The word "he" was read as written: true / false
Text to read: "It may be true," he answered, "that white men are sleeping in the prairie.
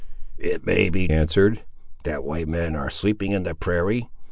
false